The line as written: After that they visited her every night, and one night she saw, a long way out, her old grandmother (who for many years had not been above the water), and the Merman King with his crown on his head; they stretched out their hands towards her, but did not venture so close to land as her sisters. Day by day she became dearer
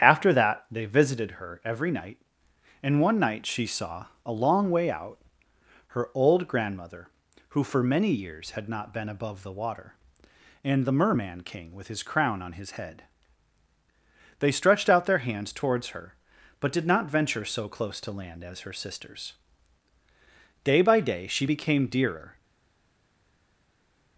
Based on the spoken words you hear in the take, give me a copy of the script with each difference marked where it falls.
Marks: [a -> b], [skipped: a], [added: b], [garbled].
After that they visited her every night, and one night she saw, a long way out, her old grandmother (who for many years had not been above the water), and the Merman King with his crown on his head; they stretched out their hands towards her, but did not venture so close to land as her sisters. Day by day she became dearer